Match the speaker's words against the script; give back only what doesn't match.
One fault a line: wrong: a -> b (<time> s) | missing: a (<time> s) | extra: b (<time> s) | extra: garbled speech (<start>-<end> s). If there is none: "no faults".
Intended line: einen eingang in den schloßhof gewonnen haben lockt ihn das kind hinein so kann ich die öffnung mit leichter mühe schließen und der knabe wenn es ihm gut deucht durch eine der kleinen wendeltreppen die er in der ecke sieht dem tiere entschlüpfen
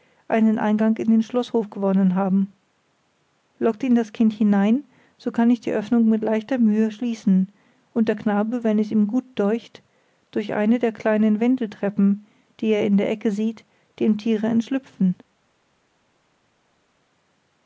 no faults